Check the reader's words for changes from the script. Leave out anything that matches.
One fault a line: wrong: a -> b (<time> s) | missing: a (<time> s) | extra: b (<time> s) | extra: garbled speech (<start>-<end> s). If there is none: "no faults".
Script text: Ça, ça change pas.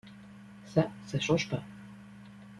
no faults